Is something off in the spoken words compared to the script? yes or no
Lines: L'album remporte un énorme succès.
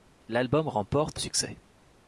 yes